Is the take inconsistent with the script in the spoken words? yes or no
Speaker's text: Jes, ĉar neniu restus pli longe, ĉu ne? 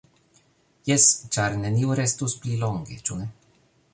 no